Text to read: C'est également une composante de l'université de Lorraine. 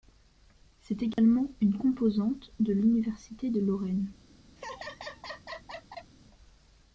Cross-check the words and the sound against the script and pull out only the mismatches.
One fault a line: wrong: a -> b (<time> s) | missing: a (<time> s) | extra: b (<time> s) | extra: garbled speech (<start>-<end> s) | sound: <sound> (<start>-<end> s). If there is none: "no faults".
sound: dropout (1.1-1.2 s)
sound: laugh (4.6-6.1 s)